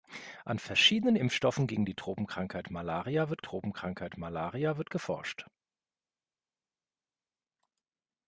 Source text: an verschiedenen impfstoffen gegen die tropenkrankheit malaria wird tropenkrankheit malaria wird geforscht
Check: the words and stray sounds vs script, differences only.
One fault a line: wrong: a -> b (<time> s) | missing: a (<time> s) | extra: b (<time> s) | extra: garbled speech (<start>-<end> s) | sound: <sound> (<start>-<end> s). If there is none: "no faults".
no faults